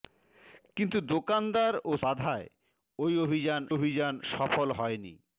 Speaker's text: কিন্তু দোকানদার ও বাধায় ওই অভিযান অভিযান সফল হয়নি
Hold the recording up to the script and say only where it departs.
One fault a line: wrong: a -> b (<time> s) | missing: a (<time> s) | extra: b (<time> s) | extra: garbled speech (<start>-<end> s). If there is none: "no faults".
no faults